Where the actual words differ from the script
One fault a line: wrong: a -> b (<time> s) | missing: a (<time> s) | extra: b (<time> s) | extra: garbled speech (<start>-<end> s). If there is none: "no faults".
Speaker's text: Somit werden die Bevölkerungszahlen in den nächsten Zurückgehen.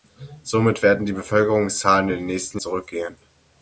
no faults